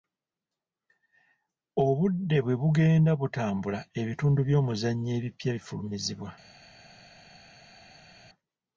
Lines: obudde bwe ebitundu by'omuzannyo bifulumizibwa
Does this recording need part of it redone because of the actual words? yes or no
yes